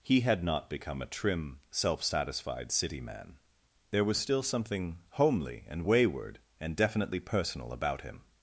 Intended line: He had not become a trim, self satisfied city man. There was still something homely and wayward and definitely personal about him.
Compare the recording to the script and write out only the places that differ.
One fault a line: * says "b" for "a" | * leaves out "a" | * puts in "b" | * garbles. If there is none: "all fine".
all fine